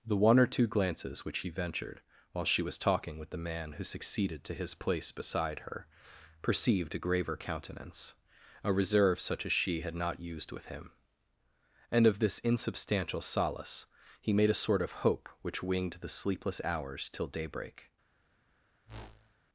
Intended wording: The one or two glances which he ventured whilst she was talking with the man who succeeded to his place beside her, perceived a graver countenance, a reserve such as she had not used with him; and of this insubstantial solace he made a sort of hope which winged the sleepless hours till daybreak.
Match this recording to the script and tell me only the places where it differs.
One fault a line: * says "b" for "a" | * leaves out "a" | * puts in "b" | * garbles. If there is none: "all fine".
* says "while" for "whilst"